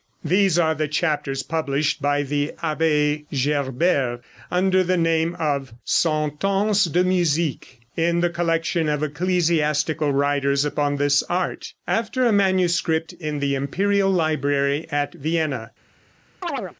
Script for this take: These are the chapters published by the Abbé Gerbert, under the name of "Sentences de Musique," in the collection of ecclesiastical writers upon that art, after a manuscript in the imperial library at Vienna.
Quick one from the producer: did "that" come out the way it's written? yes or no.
no